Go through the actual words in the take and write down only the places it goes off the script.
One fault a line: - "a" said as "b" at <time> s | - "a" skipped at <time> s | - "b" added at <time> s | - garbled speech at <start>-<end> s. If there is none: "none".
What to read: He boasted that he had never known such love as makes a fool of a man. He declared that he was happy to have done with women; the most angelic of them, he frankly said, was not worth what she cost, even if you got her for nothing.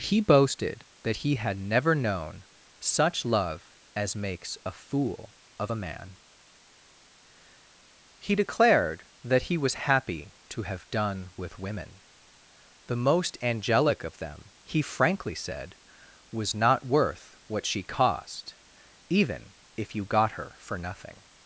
none